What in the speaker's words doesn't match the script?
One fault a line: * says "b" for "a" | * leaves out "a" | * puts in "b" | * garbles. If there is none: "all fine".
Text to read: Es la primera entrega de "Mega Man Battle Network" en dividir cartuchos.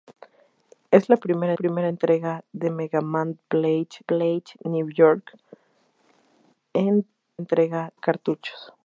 * puts in "primera"
* puts in "Battle"
* says "entrega" for "dividir"